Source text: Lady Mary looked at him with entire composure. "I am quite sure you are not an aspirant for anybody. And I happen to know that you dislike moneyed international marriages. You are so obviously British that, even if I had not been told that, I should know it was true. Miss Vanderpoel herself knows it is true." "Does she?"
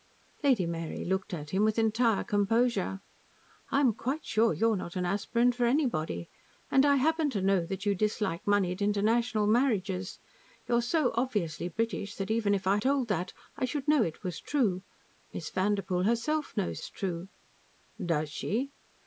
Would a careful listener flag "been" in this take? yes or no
yes